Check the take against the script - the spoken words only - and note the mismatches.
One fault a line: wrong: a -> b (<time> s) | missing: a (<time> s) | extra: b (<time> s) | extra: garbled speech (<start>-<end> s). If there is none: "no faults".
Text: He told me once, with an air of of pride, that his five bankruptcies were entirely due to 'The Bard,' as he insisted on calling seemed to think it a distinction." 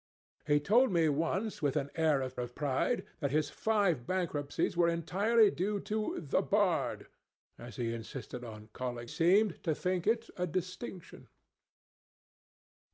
no faults